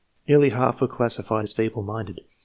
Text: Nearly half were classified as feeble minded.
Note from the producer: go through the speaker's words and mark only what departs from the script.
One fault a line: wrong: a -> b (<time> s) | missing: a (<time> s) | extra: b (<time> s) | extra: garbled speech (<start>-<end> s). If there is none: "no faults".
no faults